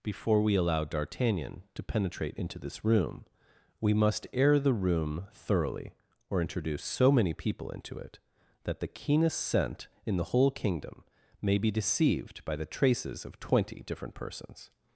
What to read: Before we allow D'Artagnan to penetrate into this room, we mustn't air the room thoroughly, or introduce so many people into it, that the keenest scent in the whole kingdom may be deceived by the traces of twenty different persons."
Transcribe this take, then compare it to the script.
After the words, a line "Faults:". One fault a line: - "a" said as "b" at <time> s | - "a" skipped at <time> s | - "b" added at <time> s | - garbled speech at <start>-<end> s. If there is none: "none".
Before we allow D'Artagnan to penetrate into this room, we must air the room thoroughly, or introduce so many people into it, that the keenest scent in the whole kingdom may be deceived by the traces of twenty different persons."
Faults:
- "mustn't" said as "must" at 3.9 s